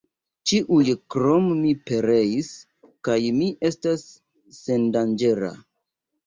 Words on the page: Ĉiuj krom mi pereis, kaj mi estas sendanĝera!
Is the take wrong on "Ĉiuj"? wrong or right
right